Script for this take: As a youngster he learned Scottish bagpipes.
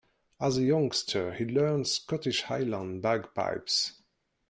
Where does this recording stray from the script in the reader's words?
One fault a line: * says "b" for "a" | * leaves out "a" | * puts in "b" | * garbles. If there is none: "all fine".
* puts in "highland"